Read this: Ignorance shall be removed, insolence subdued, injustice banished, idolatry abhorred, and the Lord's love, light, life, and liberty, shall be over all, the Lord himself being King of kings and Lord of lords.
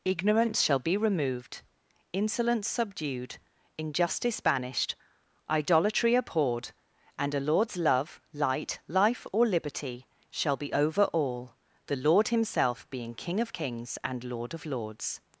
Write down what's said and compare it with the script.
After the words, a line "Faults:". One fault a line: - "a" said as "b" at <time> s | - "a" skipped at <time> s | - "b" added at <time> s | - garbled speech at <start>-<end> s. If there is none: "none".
Ignorance shall be removed, insolence subdued, injustice banished, idolatry abhorred, and a Lord's love, light, life, or liberty, shall be over all, the Lord himself being King of kings and Lord of lords.
Faults:
- "the" said as "a" at 7.3 s
- "and" said as "or" at 9.3 s